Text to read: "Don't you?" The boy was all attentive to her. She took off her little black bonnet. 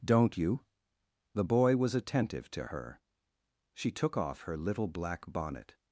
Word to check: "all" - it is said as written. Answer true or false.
false